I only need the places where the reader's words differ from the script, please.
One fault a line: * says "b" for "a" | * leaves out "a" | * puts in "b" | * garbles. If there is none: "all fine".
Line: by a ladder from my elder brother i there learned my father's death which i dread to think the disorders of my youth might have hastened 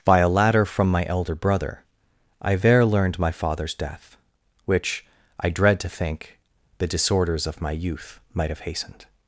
all fine